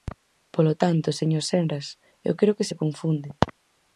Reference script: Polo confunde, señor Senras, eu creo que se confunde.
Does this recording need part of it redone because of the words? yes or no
yes